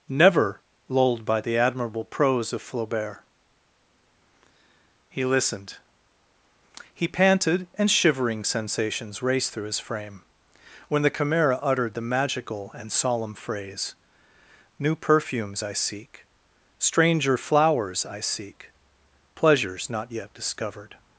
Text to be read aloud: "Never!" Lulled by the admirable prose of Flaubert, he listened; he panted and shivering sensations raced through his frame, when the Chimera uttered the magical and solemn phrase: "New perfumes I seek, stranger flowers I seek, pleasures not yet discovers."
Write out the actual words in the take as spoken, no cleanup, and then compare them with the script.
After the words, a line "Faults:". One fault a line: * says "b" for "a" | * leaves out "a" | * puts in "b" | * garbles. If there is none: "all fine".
"Never!" Lulled by the admirable prose of Flaubert, he listened; he panted and shivering sensations raced through his frame, when the Chimera uttered the magical and solemn phrase: "New perfumes I seek, stranger flowers I seek, pleasures not yet discovered."
Faults:
* says "discovered" for "discovers"